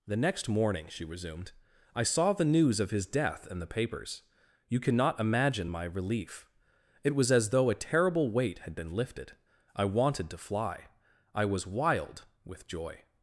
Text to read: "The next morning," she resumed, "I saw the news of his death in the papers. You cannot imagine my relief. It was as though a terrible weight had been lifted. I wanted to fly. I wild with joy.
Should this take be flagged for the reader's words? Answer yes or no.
yes